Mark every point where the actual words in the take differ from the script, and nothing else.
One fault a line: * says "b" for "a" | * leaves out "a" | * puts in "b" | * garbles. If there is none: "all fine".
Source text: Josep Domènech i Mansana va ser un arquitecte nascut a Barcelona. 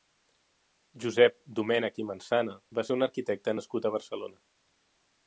all fine